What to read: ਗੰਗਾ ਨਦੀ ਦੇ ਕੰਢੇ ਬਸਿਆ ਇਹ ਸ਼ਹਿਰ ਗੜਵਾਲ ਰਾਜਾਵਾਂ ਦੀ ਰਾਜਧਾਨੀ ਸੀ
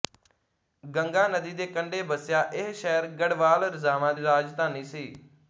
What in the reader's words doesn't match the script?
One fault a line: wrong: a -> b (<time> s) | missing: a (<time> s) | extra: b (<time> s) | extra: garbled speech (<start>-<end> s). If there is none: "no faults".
missing: ਦੀ (4.1 s)